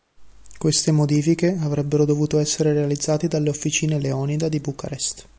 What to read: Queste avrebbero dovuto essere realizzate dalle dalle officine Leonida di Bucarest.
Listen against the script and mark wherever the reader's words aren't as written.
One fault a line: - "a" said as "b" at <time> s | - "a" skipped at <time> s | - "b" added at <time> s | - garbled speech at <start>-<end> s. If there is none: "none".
- "modifiche" added at 0.9 s
- "dalle" skipped at 3.5 s